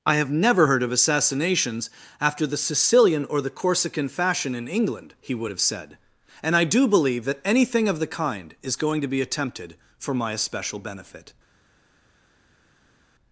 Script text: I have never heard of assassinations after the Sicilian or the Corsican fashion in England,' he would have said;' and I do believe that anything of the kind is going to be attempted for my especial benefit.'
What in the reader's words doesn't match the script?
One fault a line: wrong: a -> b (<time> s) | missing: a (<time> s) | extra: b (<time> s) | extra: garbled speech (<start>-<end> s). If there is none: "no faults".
no faults